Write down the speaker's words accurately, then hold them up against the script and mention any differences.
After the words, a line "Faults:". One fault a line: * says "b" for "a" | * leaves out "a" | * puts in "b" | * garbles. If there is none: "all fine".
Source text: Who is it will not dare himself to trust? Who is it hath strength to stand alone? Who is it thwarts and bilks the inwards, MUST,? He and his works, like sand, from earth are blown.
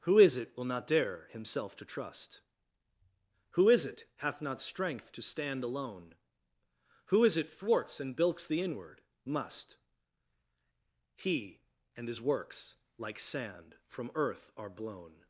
Who is it will not dare himself to trust? Who is it hath not strength to stand alone? Who is it thwarts and bilks the inward, MUST,? He and his works, like sand, from earth are blown.
Faults:
* puts in "not"
* says "inward" for "inwards"